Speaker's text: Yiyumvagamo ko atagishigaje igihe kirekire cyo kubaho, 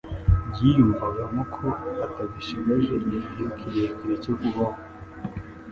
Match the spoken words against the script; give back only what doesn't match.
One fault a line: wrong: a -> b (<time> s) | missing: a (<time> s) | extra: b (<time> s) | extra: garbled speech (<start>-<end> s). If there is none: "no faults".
no faults